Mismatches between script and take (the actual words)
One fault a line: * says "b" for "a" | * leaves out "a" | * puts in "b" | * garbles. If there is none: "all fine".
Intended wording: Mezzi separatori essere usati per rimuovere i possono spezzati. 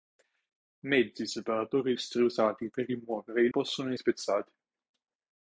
all fine